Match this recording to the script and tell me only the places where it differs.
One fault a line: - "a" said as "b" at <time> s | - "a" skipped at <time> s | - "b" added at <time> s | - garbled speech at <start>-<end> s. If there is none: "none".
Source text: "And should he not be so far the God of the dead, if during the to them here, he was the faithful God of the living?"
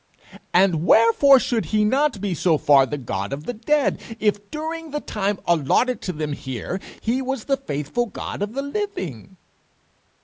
- "wherefore" added at 0.8 s
- "time allotted" added at 5.0 s